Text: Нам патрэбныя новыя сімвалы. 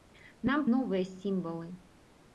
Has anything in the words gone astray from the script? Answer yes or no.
yes